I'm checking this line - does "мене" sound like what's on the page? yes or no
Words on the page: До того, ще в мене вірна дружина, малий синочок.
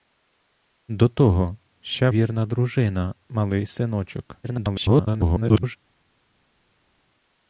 no